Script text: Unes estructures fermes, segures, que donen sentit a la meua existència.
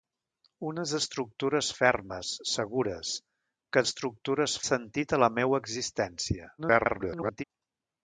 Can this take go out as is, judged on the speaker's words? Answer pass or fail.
fail